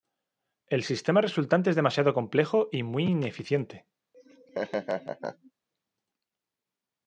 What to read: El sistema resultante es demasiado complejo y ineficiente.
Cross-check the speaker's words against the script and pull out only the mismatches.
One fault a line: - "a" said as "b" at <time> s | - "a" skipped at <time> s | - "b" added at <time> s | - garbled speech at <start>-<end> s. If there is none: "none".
- "muy" added at 2.8 s